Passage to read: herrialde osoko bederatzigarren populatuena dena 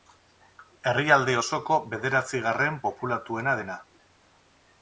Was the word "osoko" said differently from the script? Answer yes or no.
no